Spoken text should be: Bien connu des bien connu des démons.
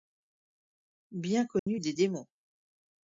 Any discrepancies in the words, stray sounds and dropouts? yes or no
yes